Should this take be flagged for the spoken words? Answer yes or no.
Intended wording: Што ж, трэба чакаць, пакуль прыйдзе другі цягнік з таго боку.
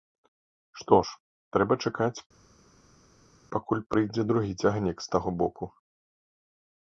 no